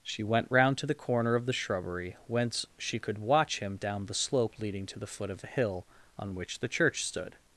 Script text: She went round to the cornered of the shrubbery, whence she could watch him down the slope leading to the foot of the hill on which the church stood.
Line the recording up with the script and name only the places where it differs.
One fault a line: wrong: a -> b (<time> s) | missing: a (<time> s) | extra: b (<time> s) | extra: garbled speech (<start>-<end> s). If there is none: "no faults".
wrong: cornered -> corner (0.9 s)